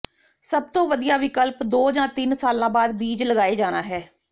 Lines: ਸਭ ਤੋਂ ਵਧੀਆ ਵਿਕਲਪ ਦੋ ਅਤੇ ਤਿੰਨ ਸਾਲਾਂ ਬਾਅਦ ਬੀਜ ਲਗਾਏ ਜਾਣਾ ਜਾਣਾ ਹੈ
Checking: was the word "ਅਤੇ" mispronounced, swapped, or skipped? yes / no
yes